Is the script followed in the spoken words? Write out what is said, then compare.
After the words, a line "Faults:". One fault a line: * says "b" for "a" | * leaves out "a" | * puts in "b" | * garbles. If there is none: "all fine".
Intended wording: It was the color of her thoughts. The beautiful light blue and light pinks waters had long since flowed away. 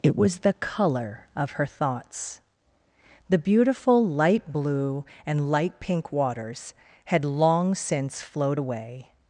It was the color of her thoughts. The beautiful light blue and light pink waters had long since flowed away.
Faults:
* says "pink" for "pinks"